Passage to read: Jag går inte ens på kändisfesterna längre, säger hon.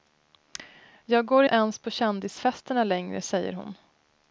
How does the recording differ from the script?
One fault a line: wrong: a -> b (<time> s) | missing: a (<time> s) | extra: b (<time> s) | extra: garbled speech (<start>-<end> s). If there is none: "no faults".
missing: inte (1.4 s)